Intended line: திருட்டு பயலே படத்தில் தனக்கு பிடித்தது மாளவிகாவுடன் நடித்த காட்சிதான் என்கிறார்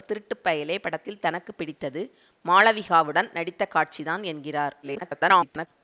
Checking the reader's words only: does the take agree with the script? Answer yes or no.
no